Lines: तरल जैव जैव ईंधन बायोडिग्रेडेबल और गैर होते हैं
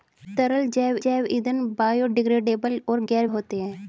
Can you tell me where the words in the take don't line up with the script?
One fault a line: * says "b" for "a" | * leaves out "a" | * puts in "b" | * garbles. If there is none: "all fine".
all fine